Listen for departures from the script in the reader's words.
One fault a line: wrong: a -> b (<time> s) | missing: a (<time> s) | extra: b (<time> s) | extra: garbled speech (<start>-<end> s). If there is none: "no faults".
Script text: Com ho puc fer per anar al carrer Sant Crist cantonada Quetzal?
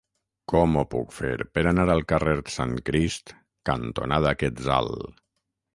no faults